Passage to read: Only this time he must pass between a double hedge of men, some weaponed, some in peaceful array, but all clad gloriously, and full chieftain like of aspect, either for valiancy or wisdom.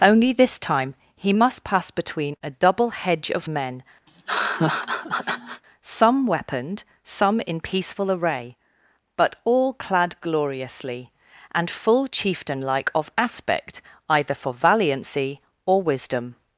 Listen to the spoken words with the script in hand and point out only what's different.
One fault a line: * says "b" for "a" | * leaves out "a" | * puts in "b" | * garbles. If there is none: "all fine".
all fine